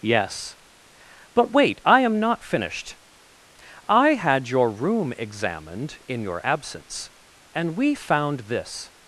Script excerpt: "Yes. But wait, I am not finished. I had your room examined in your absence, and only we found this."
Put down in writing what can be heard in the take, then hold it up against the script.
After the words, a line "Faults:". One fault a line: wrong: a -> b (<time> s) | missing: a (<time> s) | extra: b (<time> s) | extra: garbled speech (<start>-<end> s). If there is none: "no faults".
"Yes. But wait, I am not finished. I had your room examined in your absence, and we found this."
Faults:
missing: only (7.8 s)